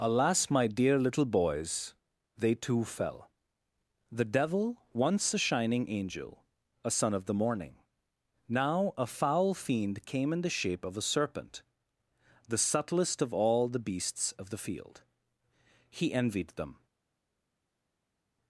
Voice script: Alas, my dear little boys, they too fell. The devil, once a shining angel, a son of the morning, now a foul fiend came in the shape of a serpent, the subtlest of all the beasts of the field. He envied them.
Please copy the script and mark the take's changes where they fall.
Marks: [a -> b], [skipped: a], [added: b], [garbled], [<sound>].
Alas, my dear little boys, they too fell. The devil, once a shining angel, a son of the morning, now a foul fiend came in the shape of a serpent, the subtlest of all the beasts of the field. He envied them.